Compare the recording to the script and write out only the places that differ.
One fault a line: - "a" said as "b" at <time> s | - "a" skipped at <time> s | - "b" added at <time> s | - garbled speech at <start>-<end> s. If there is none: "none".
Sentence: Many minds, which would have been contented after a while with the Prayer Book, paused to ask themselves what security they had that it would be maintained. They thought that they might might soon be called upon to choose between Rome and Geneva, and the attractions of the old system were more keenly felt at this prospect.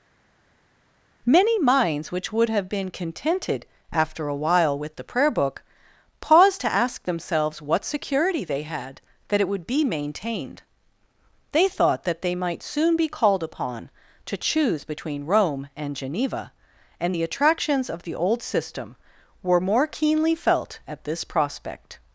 - "might" skipped at 12.6 s